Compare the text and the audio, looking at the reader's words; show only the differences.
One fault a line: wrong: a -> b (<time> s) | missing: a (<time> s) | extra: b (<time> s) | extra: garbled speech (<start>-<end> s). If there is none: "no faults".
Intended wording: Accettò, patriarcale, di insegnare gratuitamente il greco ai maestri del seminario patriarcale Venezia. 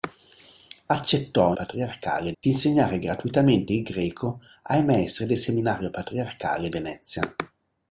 no faults